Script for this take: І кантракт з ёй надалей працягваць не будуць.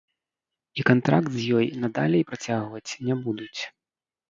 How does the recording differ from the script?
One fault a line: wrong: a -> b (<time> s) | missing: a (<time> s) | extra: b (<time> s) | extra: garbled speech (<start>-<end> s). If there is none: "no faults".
no faults